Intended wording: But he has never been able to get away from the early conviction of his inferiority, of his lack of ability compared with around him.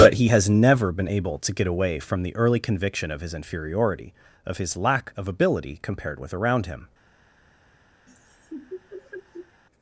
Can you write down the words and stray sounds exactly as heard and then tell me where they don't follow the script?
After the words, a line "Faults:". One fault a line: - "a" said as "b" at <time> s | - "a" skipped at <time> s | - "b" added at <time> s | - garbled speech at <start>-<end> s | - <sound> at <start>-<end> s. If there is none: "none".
But he has never been able to get away from the early conviction of his inferiority, of his lack of ability compared with around him.
Faults:
- laugh at 8.1-9.6 s